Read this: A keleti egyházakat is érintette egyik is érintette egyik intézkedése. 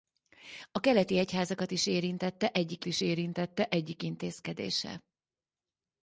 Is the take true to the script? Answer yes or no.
yes